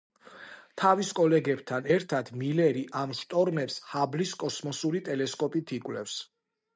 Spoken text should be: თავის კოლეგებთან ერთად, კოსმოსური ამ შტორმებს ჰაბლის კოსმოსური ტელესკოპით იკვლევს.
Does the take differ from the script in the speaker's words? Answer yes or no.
yes